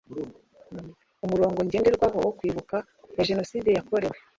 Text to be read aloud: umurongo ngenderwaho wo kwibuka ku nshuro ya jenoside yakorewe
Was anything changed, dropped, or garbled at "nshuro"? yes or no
yes